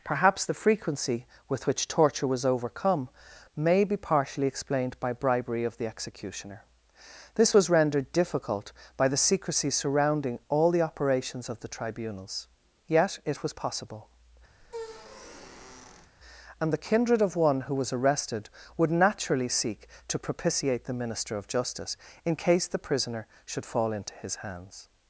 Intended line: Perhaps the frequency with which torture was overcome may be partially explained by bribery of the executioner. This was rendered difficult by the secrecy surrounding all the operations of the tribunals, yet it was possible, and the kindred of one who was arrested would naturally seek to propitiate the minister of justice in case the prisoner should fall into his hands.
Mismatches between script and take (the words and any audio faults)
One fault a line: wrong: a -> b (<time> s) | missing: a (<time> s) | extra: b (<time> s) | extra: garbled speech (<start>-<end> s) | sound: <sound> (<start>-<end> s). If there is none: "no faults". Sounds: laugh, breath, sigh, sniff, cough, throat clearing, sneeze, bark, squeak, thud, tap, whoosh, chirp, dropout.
sound: squeak (14.6-16.1 s)